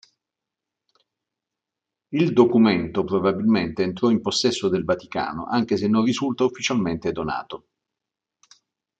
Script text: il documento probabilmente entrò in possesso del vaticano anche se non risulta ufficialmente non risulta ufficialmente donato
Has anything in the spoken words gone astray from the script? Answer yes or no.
yes